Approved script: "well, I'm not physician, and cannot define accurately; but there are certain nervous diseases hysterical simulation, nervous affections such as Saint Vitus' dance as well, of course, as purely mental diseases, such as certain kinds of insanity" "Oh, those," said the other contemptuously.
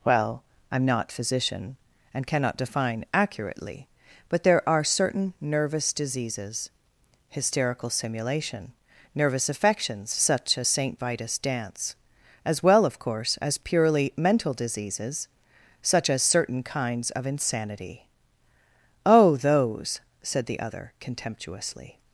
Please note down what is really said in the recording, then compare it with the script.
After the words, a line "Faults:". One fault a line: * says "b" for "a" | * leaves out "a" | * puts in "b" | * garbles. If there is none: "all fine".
"well, I'm not physician, and cannot define accurately; but there are certain nervous diseases hysterical simulation, nervous affections such as Saint Vitus' dance as well, of course, as purely mental diseases, such as certain kinds of insanity" "Oh, those," said the other contemptuously.
Faults:
all fine